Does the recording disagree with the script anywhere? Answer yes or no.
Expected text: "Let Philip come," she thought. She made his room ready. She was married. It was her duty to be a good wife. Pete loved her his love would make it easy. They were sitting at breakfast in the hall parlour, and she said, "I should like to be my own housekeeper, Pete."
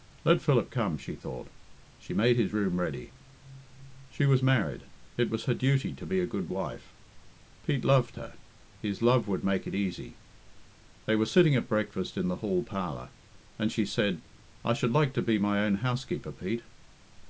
no